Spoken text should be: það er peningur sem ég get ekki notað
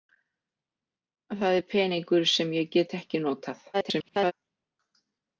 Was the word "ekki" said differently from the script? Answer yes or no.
no